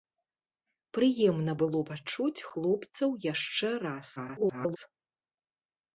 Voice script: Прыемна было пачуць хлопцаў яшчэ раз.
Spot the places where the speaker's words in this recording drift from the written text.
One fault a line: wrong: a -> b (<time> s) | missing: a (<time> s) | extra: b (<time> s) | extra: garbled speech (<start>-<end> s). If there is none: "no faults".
extra: garbled speech (4.2-4.8 s)